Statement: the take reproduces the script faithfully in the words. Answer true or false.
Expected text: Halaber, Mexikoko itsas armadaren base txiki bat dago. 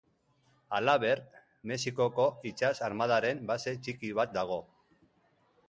true